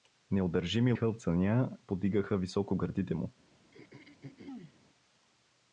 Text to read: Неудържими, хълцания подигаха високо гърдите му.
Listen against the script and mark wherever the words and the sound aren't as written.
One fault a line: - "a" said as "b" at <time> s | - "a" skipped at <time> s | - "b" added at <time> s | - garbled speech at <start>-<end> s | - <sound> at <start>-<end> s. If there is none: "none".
- throat clearing at 3.7-4.8 s